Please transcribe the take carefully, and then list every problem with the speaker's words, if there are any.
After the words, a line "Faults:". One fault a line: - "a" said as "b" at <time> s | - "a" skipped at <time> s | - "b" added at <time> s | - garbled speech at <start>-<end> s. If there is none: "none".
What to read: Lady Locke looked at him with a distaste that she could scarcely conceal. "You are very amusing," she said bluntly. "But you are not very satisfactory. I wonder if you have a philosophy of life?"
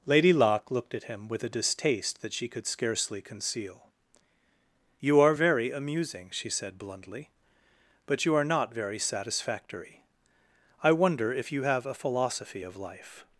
Lady Locke looked at him with a distaste that she could scarcely conceal. "You are very amusing," she said bluntly. "But you are not very satisfactory. I wonder if you have a philosophy of life?"
Faults:
none